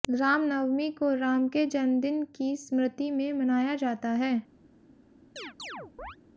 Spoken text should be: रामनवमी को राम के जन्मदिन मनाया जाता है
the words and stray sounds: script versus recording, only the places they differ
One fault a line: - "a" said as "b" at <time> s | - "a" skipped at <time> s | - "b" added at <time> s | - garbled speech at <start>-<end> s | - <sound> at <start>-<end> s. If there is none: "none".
- "की स्मृति में" added at 2.4 s
- chirp at 5.4-6.2 s